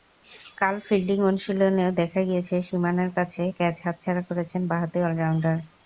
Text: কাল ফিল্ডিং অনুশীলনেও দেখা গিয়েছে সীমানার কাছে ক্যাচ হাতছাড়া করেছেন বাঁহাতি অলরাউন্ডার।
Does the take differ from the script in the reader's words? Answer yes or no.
no